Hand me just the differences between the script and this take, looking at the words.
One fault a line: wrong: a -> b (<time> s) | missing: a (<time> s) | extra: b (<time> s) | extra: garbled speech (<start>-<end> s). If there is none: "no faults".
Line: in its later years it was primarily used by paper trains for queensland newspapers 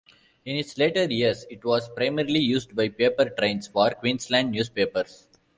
no faults